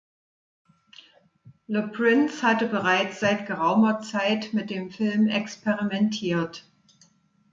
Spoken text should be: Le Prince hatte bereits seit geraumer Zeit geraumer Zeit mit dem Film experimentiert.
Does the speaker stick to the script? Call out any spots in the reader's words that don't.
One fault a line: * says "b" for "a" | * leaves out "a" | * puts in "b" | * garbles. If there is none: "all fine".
* leaves out "geraumer Zeit"